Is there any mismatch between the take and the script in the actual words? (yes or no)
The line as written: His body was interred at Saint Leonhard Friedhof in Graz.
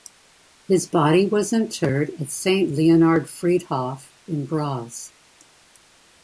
no